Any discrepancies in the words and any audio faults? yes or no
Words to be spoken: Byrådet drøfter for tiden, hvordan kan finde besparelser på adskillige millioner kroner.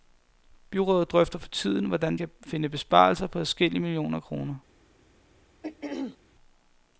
yes